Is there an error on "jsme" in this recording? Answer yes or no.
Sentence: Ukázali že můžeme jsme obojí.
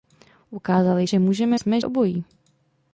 no